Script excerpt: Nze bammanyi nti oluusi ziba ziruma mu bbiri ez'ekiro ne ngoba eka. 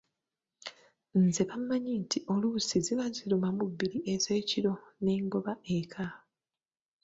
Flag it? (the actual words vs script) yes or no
no